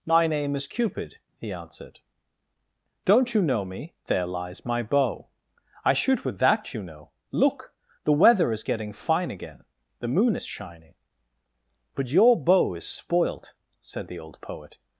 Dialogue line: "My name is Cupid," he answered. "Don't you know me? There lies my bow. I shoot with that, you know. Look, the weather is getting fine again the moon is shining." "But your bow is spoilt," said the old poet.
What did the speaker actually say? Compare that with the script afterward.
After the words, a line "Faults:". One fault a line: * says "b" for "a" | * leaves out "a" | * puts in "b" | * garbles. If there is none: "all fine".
"My name is Cupid," he answered. "Don't you know me? There lies my bow. I shoot with that, you know. Look, the weather is getting fine again the moon is shining." "But your bow is spoilt," said the old poet.
Faults:
all fine